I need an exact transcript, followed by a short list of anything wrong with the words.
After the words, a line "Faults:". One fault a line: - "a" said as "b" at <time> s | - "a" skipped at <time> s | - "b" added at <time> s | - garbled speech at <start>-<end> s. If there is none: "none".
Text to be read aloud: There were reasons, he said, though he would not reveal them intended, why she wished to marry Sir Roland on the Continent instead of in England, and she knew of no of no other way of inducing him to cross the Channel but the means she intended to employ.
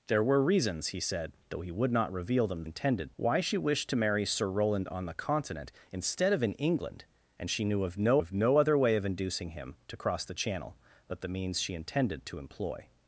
There were reasons, he said, though he would not reveal them intended, why she wished to marry Sir Roland on the Continent instead of in England, and she knew of no of no other way of inducing him to cross the Channel but the means she intended to employ.
Faults:
none